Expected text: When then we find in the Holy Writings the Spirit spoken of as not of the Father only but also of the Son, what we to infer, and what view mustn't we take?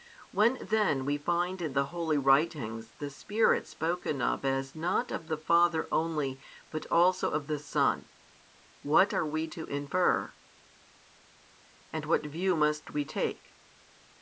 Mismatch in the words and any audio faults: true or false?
true